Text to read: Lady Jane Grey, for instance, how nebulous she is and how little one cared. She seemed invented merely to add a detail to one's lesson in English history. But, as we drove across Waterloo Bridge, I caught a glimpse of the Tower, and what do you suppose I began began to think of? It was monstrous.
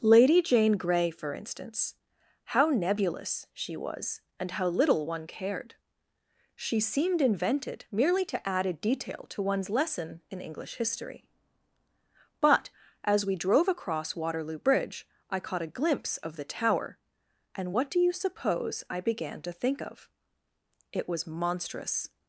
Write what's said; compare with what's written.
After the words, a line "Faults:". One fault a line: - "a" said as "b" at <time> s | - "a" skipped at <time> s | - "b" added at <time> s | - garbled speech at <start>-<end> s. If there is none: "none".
Lady Jane Grey, for instance, how nebulous she was and how little one cared. She seemed invented merely to add a detail to one's lesson in English history. But, as we drove across Waterloo Bridge, I caught a glimpse of the Tower, and what do you suppose I began to think of? It was monstrous.
Faults:
- "is" said as "was" at 3.8 s
- "began" skipped at 19.4 s